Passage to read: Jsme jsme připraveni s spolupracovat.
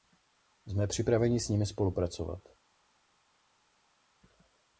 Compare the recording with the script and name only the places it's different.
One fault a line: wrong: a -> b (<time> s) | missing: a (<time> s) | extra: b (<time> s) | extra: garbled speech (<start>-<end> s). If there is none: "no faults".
missing: jsme (0.9 s)
extra: nimi (1.5 s)